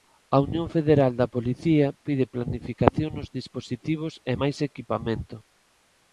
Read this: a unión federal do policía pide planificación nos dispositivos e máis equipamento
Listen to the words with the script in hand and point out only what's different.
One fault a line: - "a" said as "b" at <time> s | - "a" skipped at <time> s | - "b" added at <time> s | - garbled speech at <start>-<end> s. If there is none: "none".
- "do" said as "da" at 1.2 s